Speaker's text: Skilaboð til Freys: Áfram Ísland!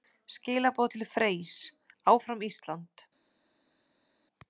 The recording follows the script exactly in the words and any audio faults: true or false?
true